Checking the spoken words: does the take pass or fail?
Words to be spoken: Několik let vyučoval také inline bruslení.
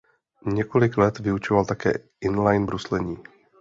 pass